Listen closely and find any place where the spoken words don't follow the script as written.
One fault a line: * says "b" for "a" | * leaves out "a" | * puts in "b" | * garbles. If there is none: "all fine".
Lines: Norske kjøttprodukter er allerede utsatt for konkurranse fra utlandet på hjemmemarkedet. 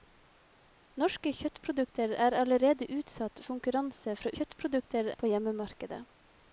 * leaves out "for"
* says "kjøttprodukter" for "utlandet"